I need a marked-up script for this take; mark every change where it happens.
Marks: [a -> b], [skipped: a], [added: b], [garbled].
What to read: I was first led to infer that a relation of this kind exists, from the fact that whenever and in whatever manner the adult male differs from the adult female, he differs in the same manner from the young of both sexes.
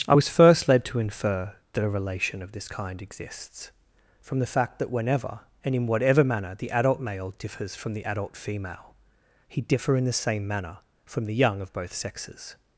I was first led to infer that a relation of this kind exists, from the fact that whenever and in whatever manner the adult male differs from the adult female, he [differs -> differ] in the same manner from the young of both sexes.